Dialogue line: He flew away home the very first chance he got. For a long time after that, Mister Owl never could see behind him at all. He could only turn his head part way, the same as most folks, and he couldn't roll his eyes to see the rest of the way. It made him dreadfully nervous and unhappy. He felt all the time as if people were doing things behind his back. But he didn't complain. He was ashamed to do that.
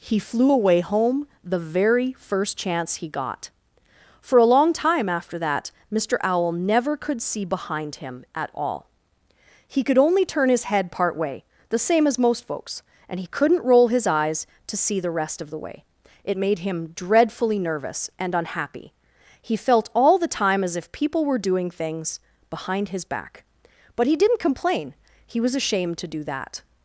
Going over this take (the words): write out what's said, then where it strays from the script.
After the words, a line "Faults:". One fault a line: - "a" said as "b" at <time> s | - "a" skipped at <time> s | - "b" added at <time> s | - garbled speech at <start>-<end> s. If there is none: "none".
He flew away home the very first chance he got. For a long time after that, Mister Owl never could see behind him at all. He could only turn his head part way, the same as most folks, and he couldn't roll his eyes to see the rest of the way. It made him dreadfully nervous and unhappy. He felt all the time as if people were doing things behind his back. But he didn't complain. He was ashamed to do that.
Faults:
none